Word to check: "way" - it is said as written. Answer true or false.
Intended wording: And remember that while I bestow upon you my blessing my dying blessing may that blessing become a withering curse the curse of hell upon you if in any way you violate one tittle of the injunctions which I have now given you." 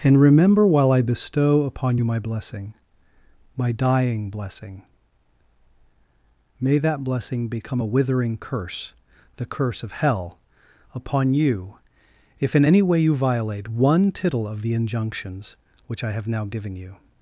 true